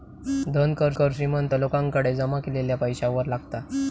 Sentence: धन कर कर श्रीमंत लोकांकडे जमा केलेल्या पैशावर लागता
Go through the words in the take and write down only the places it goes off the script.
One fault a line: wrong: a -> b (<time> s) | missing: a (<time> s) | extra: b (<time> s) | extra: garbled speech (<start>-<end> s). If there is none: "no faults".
no faults